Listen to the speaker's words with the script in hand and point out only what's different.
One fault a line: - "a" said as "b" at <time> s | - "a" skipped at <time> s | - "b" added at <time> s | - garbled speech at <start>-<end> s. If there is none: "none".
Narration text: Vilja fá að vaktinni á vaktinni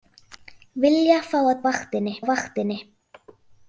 none